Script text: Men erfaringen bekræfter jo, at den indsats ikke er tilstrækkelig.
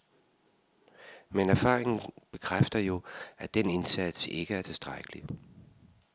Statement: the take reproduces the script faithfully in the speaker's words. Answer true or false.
true